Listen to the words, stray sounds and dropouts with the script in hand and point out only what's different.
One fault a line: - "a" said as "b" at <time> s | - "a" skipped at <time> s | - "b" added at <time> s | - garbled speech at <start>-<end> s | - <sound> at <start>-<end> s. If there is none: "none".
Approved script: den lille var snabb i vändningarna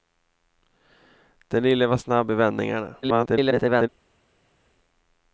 - garbled speech at 3.0-3.9 s